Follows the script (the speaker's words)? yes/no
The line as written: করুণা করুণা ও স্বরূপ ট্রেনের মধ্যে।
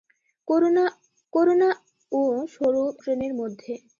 yes